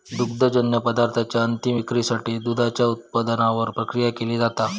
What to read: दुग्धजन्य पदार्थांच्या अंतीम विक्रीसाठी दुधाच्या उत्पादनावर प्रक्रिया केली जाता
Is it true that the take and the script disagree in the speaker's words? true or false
false